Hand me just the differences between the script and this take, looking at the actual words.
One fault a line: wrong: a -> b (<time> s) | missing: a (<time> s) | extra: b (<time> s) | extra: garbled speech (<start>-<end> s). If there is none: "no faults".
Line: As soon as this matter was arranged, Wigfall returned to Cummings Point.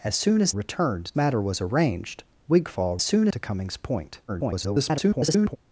wrong: this -> returned (0.5 s)
wrong: returned -> soon (3.0 s)
extra: garbled speech (4.3-5.6 s)